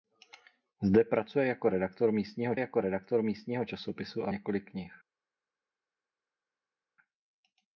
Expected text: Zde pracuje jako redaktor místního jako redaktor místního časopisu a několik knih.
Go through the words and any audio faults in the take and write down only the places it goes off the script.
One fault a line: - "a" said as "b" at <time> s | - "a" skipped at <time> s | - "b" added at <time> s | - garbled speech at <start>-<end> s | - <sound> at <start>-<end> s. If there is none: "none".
none